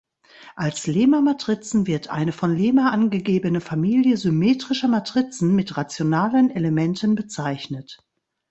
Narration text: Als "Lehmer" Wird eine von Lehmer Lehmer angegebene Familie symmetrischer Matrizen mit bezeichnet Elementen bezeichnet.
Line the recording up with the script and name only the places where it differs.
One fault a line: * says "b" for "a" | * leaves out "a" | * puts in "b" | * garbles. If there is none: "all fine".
* puts in "Matrizen"
* leaves out "Lehmer"
* says "rationalen" for "bezeichnet"